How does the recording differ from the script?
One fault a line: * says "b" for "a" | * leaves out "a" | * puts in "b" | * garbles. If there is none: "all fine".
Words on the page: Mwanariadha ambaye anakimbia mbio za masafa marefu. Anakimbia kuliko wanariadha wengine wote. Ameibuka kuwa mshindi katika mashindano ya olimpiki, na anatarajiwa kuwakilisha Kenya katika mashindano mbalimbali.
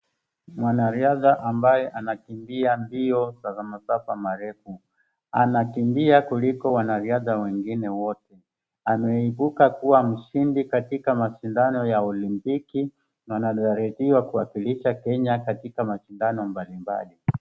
all fine